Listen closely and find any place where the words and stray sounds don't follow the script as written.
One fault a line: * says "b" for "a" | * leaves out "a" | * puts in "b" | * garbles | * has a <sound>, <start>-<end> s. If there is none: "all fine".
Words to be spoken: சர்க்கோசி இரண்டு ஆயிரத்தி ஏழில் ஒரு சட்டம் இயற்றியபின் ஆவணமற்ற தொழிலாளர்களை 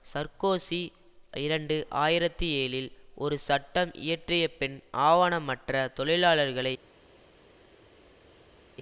all fine